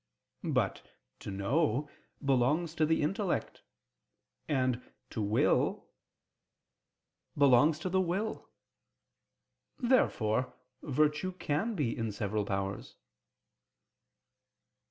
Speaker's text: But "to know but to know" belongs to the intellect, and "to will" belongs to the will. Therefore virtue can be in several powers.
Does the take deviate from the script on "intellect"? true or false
false